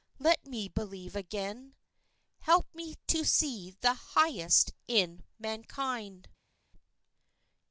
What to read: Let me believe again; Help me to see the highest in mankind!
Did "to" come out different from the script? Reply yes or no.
no